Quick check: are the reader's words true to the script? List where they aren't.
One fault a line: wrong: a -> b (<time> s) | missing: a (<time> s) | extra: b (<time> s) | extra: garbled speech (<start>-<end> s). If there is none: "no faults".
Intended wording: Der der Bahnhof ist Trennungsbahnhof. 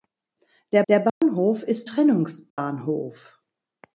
no faults